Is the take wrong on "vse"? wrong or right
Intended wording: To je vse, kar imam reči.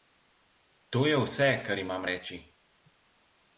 right